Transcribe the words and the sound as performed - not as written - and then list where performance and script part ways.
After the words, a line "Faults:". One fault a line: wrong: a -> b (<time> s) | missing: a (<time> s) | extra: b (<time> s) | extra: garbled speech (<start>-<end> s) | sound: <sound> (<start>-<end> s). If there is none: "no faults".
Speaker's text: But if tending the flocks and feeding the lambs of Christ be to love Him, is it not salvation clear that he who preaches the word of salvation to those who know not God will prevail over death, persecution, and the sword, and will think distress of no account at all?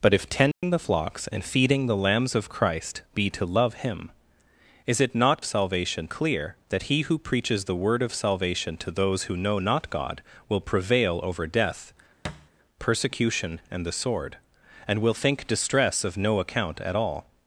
But if tending the flocks and feeding the lambs of Christ be to love Him, is it not salvation clear that he who preaches the word of salvation to those who know not God will prevail over death, persecution, and the sword, and will think distress of no account at all?
Faults:
sound: dropout (0.5-0.6 s)
sound: thud (12.2-12.5 s)